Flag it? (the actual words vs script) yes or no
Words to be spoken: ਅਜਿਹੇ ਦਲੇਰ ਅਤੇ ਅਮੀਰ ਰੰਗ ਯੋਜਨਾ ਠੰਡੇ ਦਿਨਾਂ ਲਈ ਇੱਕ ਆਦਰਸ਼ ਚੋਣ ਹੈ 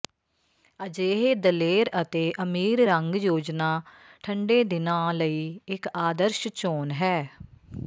no